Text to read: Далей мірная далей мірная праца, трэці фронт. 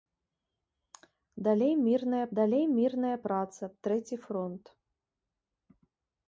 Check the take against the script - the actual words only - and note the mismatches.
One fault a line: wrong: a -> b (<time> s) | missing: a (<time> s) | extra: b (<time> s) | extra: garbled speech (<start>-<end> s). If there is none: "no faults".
no faults